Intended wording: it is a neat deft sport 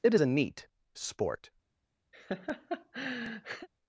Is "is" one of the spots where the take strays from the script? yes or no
yes